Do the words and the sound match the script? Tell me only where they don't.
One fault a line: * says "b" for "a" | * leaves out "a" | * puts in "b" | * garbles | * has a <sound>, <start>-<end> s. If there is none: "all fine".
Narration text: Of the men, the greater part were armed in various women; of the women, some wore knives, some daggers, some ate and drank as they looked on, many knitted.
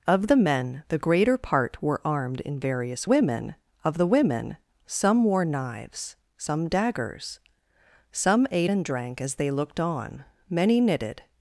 all fine